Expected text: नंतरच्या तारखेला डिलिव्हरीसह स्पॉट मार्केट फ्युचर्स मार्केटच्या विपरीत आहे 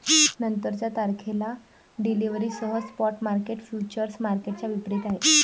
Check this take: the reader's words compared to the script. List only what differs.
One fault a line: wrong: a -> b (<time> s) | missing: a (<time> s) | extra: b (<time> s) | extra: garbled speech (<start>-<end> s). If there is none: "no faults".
no faults